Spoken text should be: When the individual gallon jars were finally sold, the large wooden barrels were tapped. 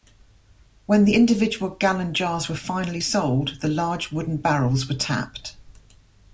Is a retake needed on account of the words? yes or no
no